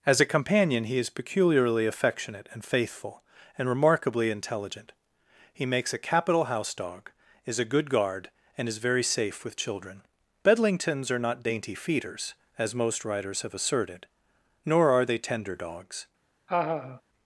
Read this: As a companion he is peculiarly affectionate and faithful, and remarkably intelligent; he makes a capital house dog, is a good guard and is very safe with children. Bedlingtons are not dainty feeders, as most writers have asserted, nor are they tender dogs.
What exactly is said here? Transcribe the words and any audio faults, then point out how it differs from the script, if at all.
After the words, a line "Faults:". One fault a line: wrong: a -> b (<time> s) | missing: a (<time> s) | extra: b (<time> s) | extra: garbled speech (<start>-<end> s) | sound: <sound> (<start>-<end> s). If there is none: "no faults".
As a companion he is peculiarly affectionate and faithful, and remarkably intelligent; he makes a capital house dog, is a good guard and is very safe with children. Bedlingtons are not dainty feeders, as most writers have asserted, nor are they tender dogs.
Faults:
sound: laugh (16.5-17.0 s)